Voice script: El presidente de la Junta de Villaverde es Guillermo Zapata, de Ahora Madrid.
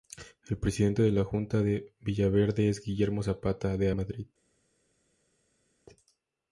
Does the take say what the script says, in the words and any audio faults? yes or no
no